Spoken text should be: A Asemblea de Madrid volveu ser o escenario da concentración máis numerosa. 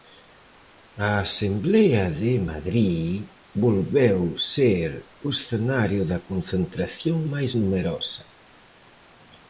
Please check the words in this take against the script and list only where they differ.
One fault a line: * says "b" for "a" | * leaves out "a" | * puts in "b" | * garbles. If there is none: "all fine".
all fine